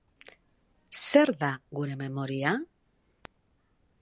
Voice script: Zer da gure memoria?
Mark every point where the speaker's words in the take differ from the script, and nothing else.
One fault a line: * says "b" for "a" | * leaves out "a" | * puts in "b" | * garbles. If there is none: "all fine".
all fine